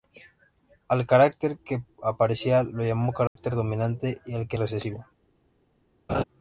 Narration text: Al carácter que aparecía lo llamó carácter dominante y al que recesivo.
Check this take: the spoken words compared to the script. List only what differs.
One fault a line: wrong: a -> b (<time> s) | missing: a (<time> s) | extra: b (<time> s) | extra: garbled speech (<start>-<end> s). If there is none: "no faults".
no faults